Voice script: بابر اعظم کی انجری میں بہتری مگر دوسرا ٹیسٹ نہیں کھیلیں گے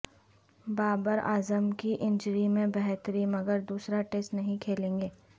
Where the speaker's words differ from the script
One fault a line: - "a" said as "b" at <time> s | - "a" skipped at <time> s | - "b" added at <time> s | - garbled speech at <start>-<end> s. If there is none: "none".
none